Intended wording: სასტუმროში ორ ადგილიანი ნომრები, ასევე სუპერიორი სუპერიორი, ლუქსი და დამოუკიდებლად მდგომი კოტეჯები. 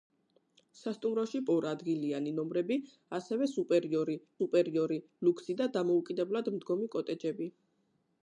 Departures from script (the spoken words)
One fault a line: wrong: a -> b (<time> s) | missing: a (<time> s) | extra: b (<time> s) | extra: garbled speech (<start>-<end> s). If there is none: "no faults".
no faults